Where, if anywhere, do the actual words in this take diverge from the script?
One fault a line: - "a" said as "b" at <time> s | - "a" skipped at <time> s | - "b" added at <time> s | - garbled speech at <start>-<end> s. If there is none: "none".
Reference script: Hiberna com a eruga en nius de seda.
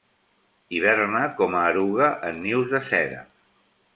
none